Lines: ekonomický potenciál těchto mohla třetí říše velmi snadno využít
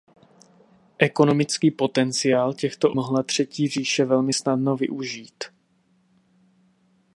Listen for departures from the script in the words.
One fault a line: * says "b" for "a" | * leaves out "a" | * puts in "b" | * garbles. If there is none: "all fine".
all fine